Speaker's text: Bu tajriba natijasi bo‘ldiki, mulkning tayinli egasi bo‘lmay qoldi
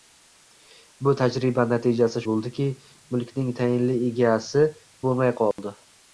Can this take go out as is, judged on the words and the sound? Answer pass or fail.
fail